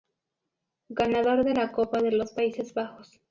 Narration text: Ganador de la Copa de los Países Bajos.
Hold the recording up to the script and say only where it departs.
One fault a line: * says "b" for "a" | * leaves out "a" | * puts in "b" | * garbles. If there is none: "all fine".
all fine